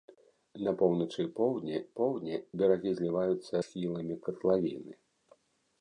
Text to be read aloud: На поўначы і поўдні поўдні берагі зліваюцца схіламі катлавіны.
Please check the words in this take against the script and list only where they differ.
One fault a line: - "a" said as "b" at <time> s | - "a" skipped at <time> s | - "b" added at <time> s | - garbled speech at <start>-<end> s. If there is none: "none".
none